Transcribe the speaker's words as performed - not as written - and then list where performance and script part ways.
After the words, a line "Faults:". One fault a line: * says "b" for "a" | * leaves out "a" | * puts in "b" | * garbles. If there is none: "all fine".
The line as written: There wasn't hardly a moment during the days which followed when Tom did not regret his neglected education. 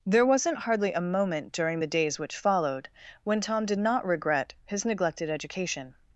There wasn't hardly a moment during the days which followed when Tom did not regret his neglected education.
Faults:
all fine